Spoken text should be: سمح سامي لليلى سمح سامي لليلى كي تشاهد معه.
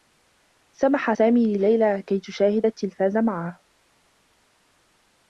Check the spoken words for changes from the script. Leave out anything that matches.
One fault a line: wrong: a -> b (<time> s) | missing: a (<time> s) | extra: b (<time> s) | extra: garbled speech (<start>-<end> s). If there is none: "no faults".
missing: سمح سامي لليلى (2.0 s)
extra: التّلفاز (2.7 s)